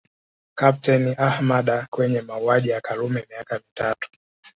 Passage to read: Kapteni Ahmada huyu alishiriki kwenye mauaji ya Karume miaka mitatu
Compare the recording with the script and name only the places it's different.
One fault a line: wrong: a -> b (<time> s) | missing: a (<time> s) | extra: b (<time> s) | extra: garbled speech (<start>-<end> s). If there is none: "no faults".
missing: huyu alishiriki (1.9 s)